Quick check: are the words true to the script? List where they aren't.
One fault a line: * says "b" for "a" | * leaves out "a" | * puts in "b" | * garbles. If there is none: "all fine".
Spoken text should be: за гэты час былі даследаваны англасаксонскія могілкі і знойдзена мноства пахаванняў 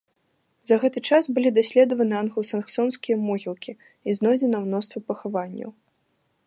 all fine